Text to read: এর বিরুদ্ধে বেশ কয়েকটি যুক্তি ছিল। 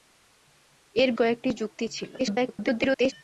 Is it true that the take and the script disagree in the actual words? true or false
true